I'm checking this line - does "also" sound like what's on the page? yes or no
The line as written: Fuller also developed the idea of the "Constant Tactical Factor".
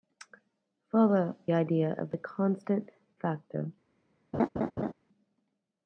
no